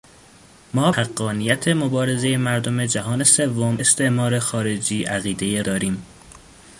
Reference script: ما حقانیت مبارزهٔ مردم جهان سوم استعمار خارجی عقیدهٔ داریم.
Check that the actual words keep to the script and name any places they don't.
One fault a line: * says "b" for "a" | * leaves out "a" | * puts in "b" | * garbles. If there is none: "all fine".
all fine